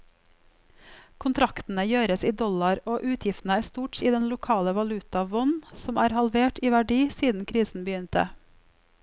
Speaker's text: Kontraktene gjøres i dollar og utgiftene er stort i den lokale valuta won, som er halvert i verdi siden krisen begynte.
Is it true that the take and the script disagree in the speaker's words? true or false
false